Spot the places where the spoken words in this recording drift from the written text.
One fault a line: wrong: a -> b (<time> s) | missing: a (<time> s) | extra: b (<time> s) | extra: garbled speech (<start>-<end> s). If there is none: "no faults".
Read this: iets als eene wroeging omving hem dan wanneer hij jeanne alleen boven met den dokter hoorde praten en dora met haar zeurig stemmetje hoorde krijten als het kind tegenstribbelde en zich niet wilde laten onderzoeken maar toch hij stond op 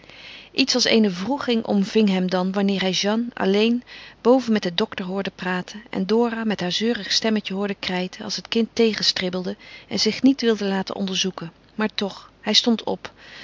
no faults